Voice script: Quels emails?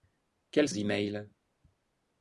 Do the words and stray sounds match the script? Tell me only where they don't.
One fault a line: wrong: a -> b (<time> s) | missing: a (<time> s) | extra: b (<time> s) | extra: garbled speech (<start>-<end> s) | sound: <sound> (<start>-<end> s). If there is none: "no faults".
no faults